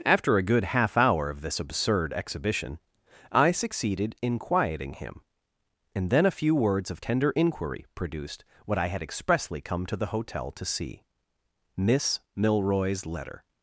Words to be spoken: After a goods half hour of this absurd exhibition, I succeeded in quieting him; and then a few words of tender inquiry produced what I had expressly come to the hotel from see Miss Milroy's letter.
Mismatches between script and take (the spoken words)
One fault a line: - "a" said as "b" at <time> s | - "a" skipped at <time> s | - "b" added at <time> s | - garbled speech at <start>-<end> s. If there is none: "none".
- "goods" said as "good" at 0.4 s
- "from" said as "to" at 10.5 s